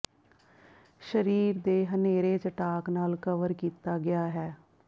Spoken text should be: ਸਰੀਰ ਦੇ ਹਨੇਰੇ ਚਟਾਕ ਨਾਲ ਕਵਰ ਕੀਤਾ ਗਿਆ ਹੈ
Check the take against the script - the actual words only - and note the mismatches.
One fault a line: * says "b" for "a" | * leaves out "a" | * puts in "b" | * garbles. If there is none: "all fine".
all fine